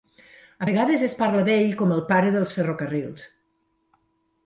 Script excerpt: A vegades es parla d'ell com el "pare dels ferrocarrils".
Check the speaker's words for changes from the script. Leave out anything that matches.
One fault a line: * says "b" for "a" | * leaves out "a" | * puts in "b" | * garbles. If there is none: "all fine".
all fine